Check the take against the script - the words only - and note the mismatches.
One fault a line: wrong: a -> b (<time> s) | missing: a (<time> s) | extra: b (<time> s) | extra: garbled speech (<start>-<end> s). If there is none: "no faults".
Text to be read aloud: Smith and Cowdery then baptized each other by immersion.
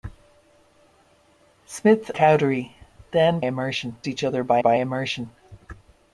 missing: and (2.1 s)
wrong: baptized -> immersion (3.4 s)
extra: by (4.6 s)